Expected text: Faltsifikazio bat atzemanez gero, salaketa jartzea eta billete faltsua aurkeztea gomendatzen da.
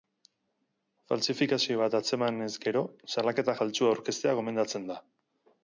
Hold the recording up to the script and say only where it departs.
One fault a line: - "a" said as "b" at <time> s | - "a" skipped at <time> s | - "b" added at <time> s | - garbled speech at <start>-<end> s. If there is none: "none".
- "jartzea eta billete" skipped at 3.6 s